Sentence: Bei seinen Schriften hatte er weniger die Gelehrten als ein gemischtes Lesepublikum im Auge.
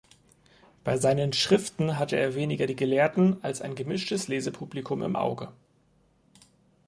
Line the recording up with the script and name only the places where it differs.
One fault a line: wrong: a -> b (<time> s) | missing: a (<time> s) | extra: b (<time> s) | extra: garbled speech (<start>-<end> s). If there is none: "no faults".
no faults